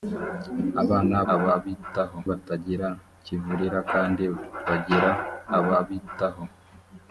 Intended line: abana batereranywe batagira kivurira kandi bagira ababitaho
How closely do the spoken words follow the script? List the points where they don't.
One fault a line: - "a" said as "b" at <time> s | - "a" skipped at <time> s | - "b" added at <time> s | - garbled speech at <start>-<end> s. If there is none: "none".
- "batereranywe" said as "ababitaho" at 1.3 s